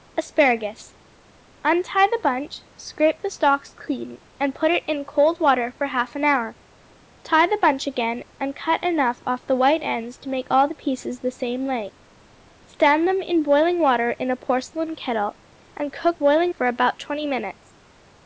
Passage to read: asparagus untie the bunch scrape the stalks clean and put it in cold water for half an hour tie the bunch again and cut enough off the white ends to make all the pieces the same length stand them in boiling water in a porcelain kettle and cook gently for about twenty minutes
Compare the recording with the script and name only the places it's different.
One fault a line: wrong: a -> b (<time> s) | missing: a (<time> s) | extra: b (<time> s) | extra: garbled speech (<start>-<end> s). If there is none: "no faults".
wrong: gently -> boiling (16.2 s)